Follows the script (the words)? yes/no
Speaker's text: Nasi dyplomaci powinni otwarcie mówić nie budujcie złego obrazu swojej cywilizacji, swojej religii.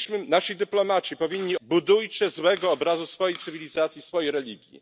no